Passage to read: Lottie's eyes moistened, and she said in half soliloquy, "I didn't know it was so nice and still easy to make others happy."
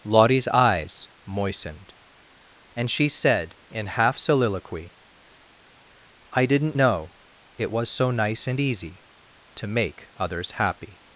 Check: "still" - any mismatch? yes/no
yes